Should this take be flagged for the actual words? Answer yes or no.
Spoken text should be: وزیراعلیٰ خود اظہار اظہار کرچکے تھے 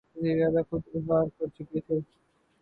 yes